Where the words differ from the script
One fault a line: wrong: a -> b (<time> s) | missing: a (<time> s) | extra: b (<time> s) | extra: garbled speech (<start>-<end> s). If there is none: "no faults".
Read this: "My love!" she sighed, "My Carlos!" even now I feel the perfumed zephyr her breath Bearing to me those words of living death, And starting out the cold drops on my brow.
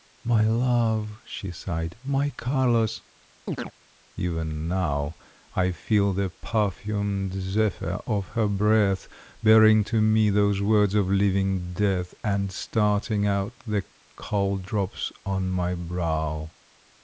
extra: of (8.0 s)